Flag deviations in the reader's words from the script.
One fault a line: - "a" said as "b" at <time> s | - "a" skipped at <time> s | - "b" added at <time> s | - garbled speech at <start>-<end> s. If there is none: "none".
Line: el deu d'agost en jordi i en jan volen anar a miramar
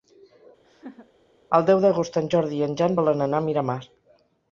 none